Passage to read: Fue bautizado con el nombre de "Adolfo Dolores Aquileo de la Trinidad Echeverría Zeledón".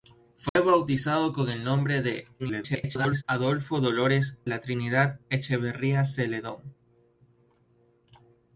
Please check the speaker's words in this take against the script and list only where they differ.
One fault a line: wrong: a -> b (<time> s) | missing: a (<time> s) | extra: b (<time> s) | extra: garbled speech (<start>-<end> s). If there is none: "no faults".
extra: garbled speech (2.4-3.2 s)
missing: Aquileo de (4.4 s)